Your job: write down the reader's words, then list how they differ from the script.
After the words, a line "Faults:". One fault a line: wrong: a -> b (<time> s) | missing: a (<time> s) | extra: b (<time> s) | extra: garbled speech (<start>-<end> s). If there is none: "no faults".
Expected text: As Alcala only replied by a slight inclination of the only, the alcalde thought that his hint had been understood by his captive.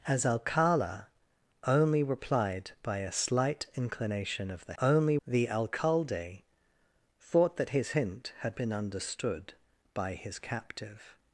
As Alcala only replied by a slight inclination of the only, the alcalde thought that his hint had been understood by his captive.
Faults:
no faults